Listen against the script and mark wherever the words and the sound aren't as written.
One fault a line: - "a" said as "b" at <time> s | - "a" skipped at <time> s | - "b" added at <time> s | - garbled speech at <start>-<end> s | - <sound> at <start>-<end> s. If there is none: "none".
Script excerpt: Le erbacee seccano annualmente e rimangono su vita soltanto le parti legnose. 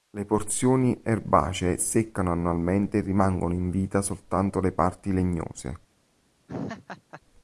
- "porzioni" added at 0.2 s
- "su" said as "in" at 3.5 s
- laugh at 6.5-7.2 s